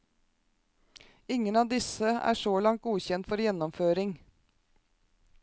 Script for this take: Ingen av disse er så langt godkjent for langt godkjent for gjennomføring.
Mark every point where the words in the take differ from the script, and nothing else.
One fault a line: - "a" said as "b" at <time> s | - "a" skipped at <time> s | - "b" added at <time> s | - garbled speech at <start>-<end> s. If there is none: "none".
- "langt godkjent for" skipped at 3.4 s